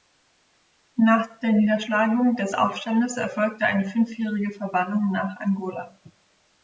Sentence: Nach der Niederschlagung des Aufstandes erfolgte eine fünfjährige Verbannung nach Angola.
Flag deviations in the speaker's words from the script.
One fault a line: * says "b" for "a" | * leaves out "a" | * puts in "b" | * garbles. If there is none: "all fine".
all fine